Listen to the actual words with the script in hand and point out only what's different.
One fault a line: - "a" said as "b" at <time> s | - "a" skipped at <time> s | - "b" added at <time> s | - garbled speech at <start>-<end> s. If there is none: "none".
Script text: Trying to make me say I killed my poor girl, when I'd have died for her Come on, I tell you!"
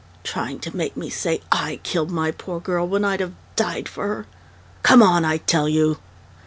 none